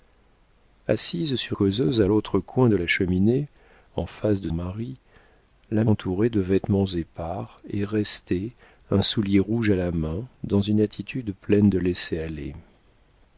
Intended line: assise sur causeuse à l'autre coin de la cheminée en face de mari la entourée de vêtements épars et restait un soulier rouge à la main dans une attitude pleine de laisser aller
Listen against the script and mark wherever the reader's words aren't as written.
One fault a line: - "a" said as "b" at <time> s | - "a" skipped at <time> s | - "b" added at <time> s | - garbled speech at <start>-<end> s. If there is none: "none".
none